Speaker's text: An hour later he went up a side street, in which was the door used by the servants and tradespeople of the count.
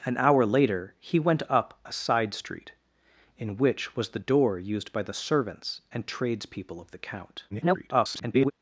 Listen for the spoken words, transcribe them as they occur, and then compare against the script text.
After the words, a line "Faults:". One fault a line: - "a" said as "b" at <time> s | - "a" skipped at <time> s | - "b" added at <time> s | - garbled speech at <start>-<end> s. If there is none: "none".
An hour later he went up a side street, in which was the door used by the servants and tradespeople of the count. [garbled]
Faults:
- garbled speech at 7.5-8.5 s